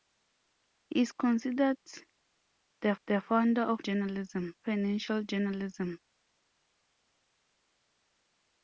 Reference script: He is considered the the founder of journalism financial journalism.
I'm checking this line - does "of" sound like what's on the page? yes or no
yes